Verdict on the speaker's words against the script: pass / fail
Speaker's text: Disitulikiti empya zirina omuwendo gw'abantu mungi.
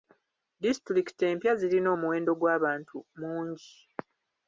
pass